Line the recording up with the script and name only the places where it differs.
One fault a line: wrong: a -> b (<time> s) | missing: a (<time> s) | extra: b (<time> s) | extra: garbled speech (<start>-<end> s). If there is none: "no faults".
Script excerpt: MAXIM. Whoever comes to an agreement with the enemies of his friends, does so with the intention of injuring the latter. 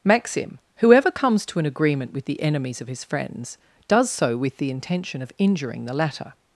no faults